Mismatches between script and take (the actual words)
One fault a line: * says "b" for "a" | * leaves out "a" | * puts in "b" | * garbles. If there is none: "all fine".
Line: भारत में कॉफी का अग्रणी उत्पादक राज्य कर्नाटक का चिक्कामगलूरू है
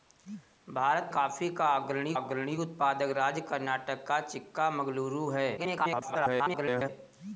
* leaves out "में"
* puts in "अग्रणी"
* garbles